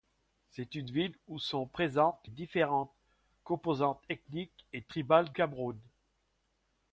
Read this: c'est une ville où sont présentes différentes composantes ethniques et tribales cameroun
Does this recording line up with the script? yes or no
yes